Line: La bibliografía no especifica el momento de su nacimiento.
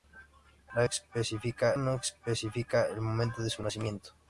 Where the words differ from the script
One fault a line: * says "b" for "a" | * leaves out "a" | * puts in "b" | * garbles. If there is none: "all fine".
* says "especifica" for "bibliografía"